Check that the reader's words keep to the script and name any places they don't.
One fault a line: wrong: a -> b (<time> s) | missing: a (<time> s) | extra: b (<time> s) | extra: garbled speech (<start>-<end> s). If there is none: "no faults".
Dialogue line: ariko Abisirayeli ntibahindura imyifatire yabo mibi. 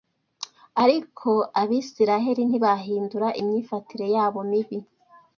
no faults